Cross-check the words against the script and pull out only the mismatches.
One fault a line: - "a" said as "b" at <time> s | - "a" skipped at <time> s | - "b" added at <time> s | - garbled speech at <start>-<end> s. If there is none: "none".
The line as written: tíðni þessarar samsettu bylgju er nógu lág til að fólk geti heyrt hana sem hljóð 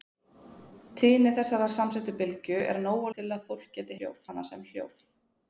- "lág" skipped at 3.1 s
- "heyrt" said as "hljóð" at 4.0 s